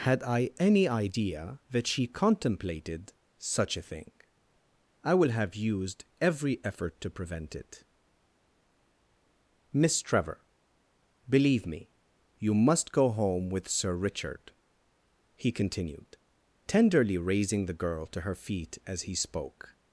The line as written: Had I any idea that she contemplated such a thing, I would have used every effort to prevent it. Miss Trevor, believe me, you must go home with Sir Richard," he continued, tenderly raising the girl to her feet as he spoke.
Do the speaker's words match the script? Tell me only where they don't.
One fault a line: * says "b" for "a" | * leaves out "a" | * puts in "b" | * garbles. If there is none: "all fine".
* says "will" for "would"